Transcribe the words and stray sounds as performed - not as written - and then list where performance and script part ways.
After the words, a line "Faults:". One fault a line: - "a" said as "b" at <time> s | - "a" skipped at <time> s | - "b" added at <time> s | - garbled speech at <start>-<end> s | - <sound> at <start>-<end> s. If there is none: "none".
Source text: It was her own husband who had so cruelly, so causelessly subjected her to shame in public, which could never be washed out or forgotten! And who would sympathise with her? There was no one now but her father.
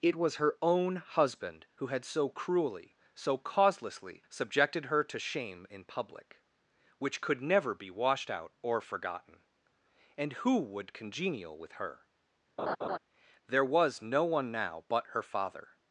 It was her own husband who had so cruelly, so causelessly subjected her to shame in public, which could never be washed out or forgotten! And who would congenial with her? There was no one now but her father.
Faults:
- "sympathise" said as "congenial" at 10.9 s
- laugh at 12.6-13.0 s